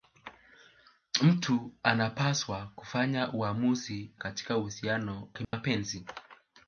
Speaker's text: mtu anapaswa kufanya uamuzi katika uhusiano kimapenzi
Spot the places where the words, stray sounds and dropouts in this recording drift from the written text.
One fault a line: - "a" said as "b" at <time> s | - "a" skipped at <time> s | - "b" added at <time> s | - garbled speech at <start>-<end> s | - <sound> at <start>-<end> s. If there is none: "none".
- dropout at 5.4-5.5 s